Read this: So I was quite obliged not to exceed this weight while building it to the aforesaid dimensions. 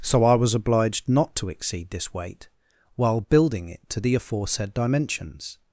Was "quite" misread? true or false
true